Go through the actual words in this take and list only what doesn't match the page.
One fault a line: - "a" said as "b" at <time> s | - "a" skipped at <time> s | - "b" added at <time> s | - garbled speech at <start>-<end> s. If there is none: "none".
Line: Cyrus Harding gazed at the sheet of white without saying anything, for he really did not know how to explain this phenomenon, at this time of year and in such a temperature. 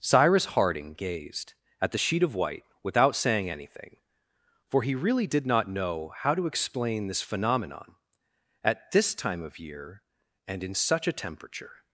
none